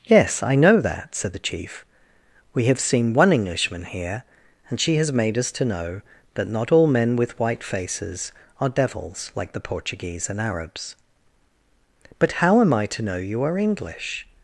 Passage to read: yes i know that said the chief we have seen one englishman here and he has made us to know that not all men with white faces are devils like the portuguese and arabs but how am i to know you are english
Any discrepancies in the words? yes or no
yes